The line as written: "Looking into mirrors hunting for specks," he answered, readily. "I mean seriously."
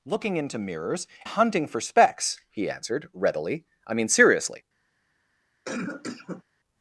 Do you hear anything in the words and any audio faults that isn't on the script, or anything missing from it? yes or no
yes